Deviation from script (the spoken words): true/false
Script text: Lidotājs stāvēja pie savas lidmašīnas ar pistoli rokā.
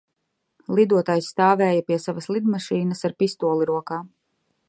false